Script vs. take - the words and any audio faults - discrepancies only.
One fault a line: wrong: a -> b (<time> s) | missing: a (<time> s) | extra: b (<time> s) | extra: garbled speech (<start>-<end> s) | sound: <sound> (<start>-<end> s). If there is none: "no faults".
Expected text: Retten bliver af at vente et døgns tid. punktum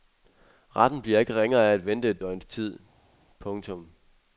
extra: ikke ringere (1.2 s)